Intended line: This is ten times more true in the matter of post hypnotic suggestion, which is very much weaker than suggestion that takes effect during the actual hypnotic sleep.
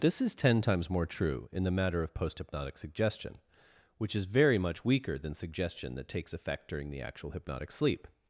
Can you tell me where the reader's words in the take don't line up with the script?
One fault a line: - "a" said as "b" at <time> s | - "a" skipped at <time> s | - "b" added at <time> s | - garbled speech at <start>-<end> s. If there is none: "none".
none